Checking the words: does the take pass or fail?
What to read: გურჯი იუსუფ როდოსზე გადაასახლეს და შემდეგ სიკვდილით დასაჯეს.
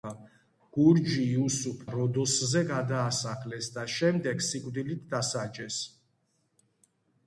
pass